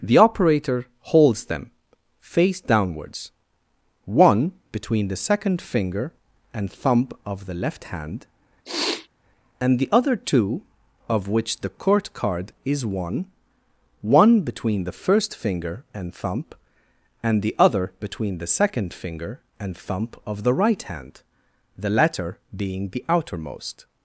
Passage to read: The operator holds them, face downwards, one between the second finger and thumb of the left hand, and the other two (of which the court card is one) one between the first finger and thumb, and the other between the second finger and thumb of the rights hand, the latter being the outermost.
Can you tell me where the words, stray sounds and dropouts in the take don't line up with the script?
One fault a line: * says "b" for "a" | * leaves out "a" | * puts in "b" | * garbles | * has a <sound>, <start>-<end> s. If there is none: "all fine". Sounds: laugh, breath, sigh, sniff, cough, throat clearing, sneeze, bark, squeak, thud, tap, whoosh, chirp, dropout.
* has a sniff, 8.6-9.1 s
* says "right" for "rights"